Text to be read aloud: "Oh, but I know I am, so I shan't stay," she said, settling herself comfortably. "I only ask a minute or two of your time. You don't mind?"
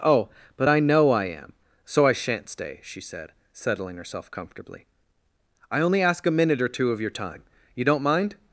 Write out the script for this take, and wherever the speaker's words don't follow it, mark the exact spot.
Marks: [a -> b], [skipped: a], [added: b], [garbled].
"Oh, but I know I am, so I shan't stay," she said, settling herself comfortably. "I only ask a minute or two of your time. You don't mind?"